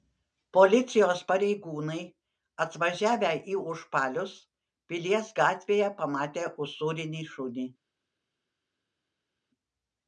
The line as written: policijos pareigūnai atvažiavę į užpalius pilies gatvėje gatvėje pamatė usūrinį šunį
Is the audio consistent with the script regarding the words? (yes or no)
no